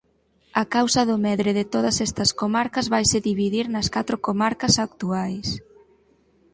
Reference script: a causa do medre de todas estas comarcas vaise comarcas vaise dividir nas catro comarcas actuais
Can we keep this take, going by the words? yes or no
no